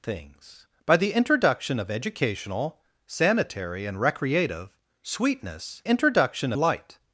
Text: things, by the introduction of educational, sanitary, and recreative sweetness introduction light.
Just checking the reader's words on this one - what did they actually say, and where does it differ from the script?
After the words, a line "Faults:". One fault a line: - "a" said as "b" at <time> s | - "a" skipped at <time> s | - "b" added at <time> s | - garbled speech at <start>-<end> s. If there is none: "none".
things, by the introduction of educational, sanitary, and recreative sweetness introduction light.
Faults:
none